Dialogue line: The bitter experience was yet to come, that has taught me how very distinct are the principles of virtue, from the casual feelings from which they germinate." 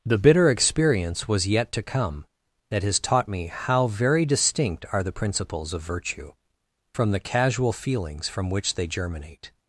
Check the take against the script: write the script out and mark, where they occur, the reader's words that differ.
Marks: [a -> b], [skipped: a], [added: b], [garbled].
The bitter experience was yet to come, that has taught me how very distinct are the principles of virtue, from the casual feelings from which they germinate."